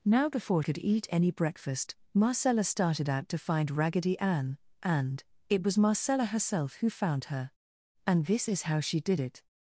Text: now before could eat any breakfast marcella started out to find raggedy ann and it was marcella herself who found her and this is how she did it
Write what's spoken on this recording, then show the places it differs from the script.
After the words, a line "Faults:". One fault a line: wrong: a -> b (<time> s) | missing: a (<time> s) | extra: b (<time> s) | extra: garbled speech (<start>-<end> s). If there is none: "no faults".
now before could eat any breakfast marcella started out to find raggedy ann and it was marcella herself who found her and this is how she did it
Faults:
no faults